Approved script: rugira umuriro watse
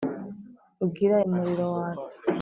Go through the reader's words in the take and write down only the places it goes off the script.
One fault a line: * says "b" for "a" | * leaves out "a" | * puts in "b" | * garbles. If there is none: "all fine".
all fine